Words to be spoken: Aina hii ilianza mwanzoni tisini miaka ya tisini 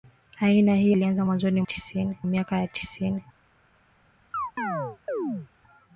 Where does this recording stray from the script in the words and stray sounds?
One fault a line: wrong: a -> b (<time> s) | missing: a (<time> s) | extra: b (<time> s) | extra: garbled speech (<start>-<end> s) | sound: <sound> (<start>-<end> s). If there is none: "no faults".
sound: chirp (4.3-5.5 s)